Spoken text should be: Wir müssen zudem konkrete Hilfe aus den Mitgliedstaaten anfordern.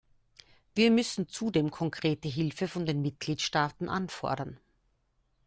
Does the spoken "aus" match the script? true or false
false